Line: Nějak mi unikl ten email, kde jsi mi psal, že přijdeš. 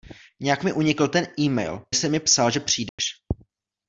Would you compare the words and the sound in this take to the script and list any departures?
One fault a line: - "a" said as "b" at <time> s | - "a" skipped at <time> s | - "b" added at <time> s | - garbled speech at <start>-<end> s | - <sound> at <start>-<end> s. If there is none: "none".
- "kde" skipped at 1.9 s
- dropout at 2.9-3.0 s